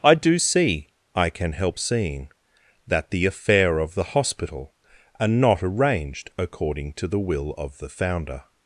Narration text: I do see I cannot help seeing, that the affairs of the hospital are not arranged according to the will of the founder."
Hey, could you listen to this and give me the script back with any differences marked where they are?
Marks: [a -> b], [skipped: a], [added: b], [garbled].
I do see I [cannot -> can] help seeing, that the [affairs -> affair] of the hospital are not arranged according to the will of the founder."